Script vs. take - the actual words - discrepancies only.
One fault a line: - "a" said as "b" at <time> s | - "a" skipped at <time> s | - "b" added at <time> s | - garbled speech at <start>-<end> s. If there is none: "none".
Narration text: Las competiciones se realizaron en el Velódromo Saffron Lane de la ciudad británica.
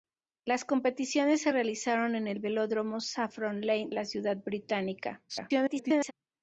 - "de" skipped at 3.9 s
- garbled speech at 5.3-6.1 s